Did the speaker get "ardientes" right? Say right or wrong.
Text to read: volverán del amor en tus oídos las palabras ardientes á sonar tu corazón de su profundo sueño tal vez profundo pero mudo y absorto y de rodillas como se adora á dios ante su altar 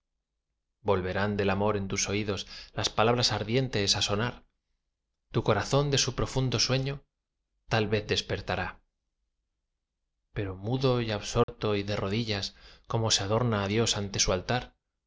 right